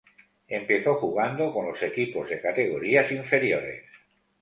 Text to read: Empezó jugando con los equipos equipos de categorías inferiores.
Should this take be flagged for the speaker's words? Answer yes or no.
yes